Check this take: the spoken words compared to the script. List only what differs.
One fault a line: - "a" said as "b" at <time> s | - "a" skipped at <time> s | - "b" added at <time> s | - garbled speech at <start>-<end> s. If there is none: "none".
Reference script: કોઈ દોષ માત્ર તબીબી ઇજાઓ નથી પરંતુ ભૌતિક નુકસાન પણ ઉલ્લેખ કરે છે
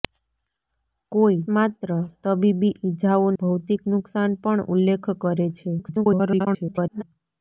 - "દોષ" skipped at 1.4 s
- "નથી પરંતુ" skipped at 3.3 s
- garbled speech at 5.8-7.0 s